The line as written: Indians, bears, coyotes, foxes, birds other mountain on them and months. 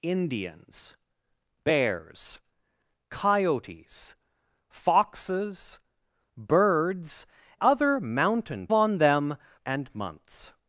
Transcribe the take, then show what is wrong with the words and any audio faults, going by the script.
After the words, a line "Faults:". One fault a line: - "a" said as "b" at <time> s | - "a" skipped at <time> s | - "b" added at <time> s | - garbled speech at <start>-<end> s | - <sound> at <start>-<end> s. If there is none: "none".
Indians, bears, coyotes, foxes, birds other mountain on them and months.
Faults:
none